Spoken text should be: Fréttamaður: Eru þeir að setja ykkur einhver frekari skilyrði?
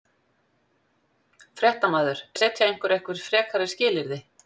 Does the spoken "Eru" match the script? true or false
false